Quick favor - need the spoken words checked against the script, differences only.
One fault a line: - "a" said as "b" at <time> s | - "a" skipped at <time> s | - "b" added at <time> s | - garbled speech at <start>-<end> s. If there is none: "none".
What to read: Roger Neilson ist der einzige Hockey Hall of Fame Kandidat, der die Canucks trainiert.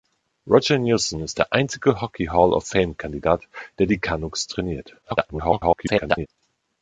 - garbled speech at 5.0-6.3 s